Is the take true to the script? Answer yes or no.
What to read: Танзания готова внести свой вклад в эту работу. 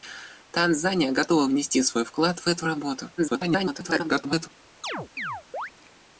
no